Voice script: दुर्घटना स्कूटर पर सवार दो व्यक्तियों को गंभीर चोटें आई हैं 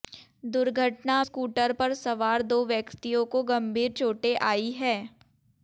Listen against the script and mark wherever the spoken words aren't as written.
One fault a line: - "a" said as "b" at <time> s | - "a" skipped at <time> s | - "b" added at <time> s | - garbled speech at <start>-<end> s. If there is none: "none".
none